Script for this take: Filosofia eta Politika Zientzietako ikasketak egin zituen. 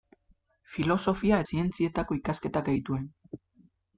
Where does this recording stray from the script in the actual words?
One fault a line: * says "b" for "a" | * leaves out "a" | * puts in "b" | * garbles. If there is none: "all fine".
* leaves out "eta Politika"
* leaves out "egin"